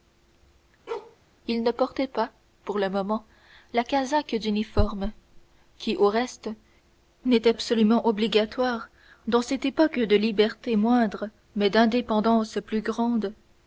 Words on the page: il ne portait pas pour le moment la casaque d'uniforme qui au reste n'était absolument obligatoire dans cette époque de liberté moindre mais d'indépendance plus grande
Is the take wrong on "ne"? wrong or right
right